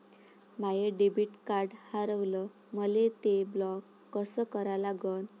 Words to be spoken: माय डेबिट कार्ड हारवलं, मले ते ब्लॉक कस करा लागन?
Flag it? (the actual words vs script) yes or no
no